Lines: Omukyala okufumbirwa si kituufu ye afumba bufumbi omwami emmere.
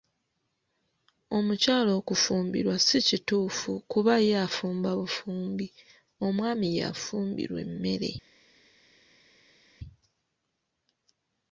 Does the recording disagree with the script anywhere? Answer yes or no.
yes